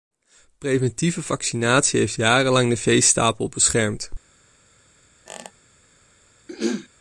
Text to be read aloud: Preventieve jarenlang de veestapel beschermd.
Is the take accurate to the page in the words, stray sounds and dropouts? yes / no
no